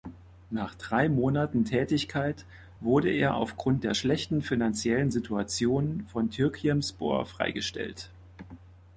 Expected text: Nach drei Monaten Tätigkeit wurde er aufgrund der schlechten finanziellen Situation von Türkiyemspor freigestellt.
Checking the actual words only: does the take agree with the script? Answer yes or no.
yes